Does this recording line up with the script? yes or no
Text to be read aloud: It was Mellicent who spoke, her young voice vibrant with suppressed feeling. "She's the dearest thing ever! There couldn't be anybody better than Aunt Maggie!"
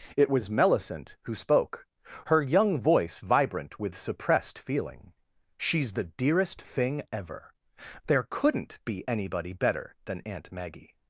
yes